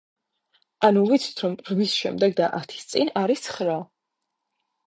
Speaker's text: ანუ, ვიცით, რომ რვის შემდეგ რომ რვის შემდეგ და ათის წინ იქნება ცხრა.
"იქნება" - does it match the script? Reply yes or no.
no